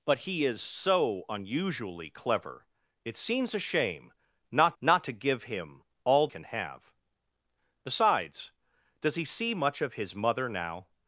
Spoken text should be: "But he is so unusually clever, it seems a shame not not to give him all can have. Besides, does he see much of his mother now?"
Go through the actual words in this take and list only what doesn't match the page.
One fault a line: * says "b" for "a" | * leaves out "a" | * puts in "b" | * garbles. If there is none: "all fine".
all fine